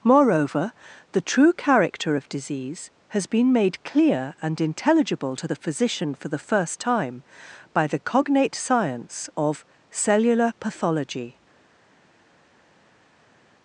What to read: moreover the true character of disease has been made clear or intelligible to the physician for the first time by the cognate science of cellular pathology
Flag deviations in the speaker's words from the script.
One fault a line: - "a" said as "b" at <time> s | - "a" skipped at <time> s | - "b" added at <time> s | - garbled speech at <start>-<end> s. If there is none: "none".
- "or" said as "and" at 4.4 s